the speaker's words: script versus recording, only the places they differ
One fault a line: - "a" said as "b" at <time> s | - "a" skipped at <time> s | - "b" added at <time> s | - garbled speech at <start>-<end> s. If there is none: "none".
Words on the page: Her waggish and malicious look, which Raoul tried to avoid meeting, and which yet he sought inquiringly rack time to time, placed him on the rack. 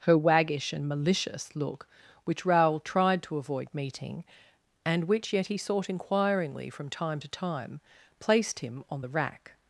- "rack" said as "from" at 6.7 s